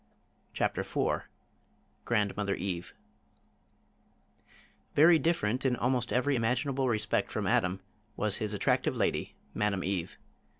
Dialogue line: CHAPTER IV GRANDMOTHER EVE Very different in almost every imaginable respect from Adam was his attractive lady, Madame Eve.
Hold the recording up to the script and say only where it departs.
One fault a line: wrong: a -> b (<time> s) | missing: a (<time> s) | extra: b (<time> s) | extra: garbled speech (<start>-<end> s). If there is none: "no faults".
no faults